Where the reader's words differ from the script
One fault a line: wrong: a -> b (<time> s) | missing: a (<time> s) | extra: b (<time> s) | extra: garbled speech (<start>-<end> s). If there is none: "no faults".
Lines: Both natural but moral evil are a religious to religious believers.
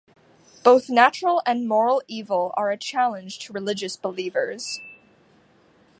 wrong: but -> and (1.4 s)
wrong: religious -> challenge (2.8 s)